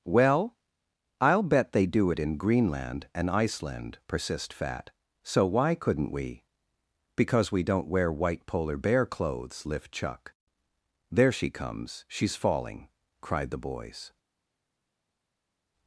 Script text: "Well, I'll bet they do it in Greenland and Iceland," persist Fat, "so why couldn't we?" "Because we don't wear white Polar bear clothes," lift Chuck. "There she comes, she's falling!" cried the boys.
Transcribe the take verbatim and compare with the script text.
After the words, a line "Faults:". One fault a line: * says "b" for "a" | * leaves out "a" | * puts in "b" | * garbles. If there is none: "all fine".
"Well, I'll bet they do it in Greenland and Iceland," persist Fat, "so why couldn't we?" "Because we don't wear white Polar bear clothes," lift Chuck. "There she comes, she's falling!" cried the boys.
Faults:
all fine